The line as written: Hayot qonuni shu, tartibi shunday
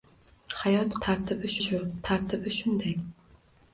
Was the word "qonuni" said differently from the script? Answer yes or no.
yes